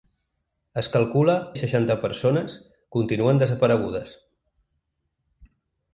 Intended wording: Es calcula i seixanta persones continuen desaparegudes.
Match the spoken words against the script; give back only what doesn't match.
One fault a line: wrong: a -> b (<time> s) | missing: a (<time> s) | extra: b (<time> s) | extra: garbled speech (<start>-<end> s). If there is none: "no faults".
no faults